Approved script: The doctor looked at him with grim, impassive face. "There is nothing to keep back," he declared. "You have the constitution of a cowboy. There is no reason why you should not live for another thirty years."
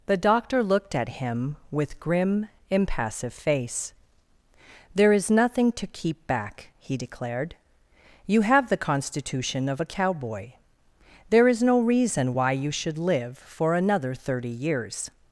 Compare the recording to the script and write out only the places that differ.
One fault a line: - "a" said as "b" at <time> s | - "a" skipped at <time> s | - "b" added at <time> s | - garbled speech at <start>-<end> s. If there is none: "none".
- "not" skipped at 13.0 s